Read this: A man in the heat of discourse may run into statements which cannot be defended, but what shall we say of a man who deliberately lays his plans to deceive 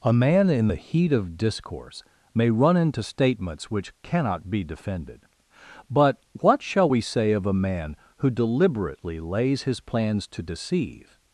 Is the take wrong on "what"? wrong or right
right